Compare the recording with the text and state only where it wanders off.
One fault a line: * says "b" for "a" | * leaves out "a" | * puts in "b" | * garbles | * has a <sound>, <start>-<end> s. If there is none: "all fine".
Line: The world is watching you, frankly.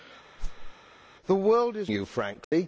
* has a whoosh, 0.4-0.7 s
* leaves out "watching"
* has a dropout, 2.4-2.5 s